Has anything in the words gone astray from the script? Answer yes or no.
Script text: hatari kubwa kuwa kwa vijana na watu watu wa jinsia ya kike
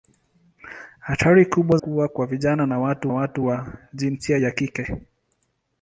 no